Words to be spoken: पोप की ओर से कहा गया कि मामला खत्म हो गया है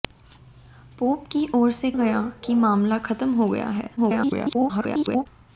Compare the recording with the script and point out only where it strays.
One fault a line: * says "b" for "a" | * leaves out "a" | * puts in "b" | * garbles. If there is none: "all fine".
* leaves out "कहा"
* garbles